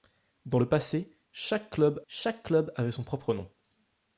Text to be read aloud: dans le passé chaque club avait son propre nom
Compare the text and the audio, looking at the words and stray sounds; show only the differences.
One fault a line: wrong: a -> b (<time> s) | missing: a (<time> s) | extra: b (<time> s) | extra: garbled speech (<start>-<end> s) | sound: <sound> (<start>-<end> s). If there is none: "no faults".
extra: chaque club (2.1 s)